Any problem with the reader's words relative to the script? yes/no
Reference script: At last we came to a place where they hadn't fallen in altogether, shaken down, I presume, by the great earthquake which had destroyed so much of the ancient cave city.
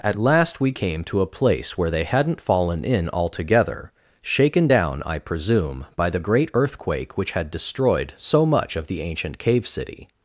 no